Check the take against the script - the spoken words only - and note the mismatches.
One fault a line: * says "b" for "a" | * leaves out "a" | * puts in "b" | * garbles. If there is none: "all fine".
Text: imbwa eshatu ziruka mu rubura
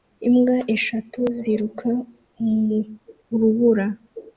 all fine